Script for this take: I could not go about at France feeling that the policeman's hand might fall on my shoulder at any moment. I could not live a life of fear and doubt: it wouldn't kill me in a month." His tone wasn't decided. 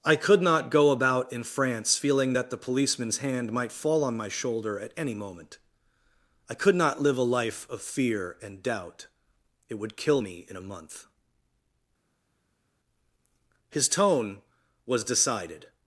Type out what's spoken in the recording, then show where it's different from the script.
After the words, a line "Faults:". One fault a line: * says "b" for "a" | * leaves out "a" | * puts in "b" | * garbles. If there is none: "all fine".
I could not go about in France feeling that the policeman's hand might fall on my shoulder at any moment. I could not live a life of fear and doubt: it would kill me in a month." His tone was decided.
Faults:
* says "in" for "at"
* says "would" for "wouldn't"
* says "was" for "wasn't"